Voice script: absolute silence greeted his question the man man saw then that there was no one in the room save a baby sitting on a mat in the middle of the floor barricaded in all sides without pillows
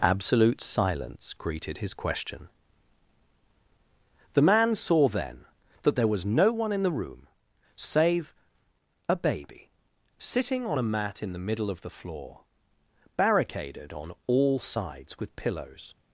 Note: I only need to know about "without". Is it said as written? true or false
false